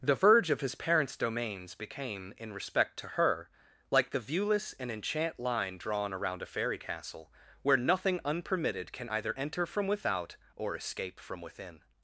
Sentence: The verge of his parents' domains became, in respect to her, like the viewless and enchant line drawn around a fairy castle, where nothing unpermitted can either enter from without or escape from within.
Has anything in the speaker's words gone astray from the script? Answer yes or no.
no